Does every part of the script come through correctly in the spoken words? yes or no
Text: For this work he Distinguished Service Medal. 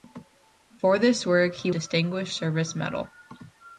yes